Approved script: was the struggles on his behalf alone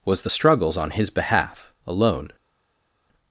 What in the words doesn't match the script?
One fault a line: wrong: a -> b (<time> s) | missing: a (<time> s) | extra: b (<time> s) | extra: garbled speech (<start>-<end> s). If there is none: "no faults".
no faults